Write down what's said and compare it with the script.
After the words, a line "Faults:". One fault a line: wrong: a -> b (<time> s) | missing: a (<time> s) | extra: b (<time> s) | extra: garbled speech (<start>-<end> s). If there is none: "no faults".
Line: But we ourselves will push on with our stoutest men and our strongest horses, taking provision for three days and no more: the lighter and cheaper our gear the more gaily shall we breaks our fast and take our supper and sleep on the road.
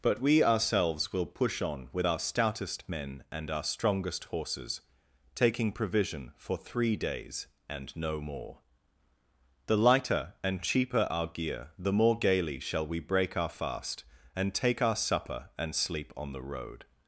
But we ourselves will push on with our stoutest men and our strongest horses, taking provision for three days and no more: the lighter and cheaper our gear the more gaily shall we break our fast and take our supper and sleep on the road.
Faults:
wrong: breaks -> break (13.0 s)